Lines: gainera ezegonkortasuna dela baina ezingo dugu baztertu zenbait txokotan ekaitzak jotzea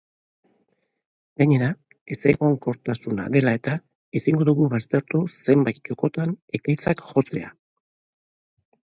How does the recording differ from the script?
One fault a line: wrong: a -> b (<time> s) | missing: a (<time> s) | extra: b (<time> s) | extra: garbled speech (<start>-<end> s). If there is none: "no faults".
wrong: baina -> eta (3.6 s)